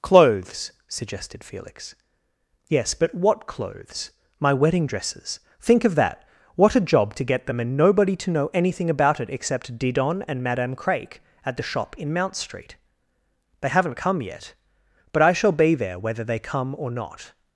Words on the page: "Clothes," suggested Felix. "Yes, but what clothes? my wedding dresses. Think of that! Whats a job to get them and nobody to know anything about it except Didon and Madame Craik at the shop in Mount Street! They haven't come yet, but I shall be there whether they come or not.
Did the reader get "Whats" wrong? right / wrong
wrong